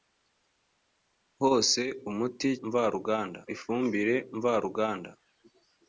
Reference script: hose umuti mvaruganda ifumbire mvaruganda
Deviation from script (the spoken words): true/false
false